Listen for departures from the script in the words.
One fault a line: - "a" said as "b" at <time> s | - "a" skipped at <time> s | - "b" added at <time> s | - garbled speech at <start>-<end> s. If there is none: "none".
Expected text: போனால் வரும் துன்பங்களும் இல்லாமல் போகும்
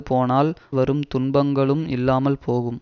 none